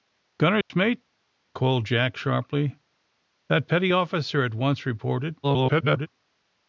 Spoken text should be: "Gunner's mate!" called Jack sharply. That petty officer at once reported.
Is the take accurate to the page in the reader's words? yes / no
no